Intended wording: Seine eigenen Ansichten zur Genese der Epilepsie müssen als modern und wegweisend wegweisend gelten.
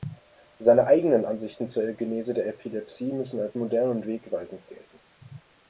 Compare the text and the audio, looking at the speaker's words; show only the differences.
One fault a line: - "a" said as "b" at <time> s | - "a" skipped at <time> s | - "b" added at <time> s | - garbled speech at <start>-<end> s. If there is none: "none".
- "wegweisend" skipped at 4.7 s